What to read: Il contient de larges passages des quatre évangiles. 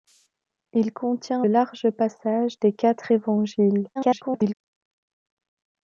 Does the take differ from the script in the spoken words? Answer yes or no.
yes